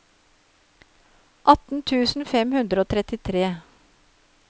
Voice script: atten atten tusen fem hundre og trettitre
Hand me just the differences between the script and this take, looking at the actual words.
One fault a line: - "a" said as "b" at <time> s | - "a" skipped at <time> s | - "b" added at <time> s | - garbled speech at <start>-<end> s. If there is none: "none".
- "atten" skipped at 1.8 s